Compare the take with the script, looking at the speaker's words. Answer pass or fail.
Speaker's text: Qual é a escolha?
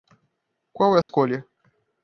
pass